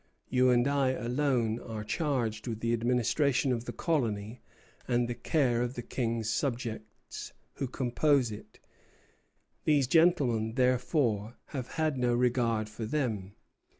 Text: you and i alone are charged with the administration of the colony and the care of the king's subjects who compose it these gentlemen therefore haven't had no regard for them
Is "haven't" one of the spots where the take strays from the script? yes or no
yes